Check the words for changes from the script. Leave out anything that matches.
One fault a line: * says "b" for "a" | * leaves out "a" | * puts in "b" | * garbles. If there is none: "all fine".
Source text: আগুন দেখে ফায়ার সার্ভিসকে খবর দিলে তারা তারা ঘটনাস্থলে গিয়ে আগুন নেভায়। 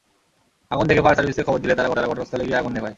all fine